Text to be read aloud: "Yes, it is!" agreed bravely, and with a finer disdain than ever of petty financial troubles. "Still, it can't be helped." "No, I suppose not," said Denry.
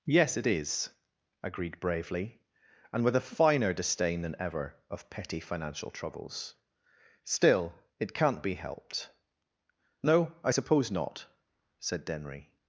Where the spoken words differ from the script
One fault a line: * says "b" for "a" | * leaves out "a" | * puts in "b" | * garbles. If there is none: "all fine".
all fine